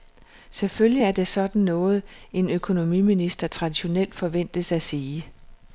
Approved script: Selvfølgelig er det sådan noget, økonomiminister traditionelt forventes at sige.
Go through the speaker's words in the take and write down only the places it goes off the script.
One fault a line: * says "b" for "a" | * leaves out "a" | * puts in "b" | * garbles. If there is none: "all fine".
* puts in "en"